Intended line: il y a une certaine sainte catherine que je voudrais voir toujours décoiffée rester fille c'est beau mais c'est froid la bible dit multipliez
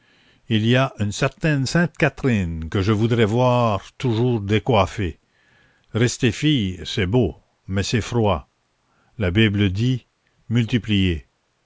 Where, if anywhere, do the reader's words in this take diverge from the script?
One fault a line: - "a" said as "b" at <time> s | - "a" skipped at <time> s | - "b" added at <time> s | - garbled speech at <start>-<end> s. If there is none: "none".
none